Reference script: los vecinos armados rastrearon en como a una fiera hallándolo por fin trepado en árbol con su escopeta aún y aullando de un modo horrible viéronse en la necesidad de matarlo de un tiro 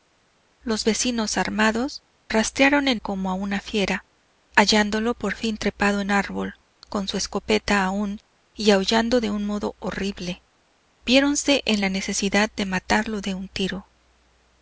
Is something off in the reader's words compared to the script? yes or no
no